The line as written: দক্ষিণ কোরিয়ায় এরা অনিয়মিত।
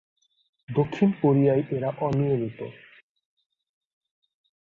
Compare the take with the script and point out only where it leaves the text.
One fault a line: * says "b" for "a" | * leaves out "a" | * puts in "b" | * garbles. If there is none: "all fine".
all fine